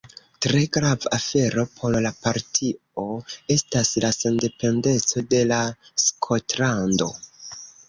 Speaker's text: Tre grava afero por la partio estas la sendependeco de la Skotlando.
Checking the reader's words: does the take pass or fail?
pass